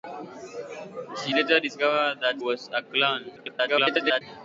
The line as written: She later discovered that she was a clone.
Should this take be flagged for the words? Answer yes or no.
yes